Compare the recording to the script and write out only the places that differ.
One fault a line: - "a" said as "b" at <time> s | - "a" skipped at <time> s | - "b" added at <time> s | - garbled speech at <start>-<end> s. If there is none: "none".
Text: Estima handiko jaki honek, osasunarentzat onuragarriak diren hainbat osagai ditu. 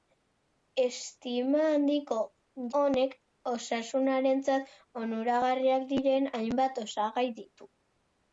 - "jaki" skipped at 2.1 s